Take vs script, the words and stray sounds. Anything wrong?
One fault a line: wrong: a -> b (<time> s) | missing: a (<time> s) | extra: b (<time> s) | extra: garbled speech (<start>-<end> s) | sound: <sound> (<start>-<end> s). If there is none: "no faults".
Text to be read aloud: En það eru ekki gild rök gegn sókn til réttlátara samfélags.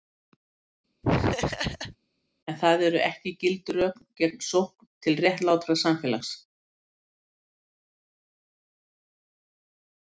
sound: laugh (1.0-2.0 s)